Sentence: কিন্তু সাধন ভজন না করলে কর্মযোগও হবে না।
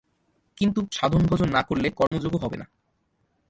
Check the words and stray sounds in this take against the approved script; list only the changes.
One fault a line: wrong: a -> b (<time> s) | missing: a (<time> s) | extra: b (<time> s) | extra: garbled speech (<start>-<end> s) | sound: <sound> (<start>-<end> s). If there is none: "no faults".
sound: dropout (2.1-2.1 s)